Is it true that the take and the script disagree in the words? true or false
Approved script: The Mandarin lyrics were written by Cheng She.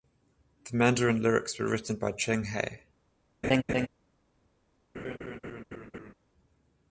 true